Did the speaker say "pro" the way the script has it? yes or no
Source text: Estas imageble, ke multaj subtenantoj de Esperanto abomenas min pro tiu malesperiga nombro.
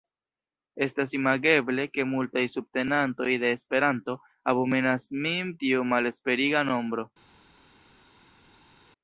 no